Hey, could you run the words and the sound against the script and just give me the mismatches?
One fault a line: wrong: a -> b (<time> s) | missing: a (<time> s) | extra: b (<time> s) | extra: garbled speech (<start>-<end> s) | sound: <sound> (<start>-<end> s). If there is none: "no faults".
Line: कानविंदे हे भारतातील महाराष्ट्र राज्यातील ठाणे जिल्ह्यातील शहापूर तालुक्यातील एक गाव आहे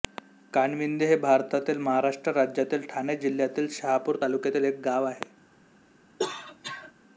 sound: cough (6.2-6.9 s)